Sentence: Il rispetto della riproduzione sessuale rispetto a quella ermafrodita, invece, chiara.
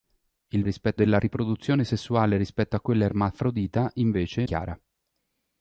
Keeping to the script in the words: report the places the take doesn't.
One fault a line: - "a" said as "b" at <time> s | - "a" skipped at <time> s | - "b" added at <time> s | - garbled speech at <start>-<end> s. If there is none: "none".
none